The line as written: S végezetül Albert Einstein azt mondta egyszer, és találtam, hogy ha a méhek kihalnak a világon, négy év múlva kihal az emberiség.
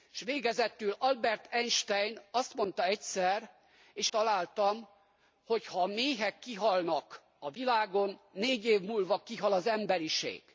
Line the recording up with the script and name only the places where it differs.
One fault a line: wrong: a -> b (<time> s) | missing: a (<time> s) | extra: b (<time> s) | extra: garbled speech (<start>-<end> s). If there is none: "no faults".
no faults